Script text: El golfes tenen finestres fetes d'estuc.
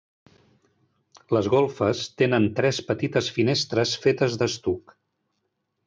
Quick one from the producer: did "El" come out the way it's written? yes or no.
no